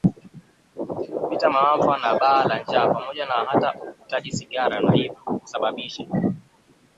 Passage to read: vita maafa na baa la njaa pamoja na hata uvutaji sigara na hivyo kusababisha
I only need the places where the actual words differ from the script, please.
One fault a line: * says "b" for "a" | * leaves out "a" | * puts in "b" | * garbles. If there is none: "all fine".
all fine